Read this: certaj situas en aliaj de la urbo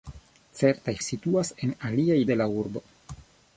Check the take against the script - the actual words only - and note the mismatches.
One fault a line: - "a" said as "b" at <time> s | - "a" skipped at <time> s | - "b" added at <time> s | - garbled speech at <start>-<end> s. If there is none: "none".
none